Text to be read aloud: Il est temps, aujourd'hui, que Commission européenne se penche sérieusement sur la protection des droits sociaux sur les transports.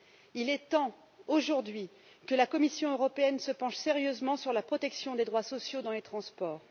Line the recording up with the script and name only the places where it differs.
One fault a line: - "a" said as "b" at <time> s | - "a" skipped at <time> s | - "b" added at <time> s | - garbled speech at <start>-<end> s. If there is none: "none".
- "la" added at 2.4 s
- "sur" said as "dans" at 5.8 s